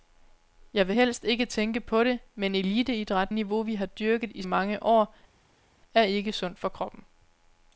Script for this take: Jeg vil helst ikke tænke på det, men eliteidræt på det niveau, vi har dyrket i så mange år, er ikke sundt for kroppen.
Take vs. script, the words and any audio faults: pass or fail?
fail